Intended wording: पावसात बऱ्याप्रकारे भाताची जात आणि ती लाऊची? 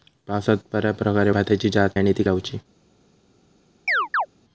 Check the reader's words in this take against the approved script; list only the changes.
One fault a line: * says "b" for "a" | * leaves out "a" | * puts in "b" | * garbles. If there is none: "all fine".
all fine